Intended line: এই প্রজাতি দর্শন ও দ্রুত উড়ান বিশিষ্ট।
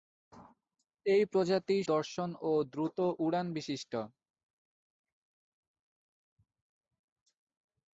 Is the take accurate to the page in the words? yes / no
yes